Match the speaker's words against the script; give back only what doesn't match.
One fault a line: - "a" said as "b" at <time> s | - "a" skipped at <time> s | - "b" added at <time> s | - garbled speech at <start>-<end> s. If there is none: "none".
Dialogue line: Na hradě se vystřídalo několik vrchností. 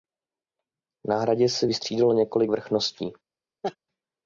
none